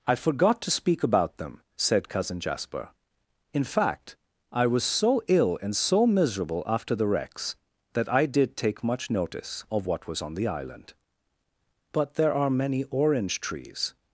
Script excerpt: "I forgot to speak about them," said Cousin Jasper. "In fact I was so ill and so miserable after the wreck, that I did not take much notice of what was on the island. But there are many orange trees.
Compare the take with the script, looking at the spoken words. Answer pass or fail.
fail